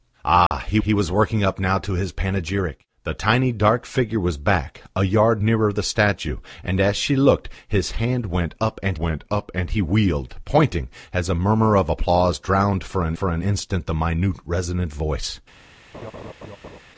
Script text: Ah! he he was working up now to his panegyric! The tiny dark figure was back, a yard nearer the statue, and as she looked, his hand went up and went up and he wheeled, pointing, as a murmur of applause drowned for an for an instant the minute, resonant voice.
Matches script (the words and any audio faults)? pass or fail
fail